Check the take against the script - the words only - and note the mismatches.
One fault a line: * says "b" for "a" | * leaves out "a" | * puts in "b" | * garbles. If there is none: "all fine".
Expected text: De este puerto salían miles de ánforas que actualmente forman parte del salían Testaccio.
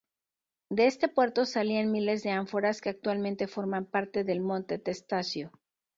* says "monte" for "salían"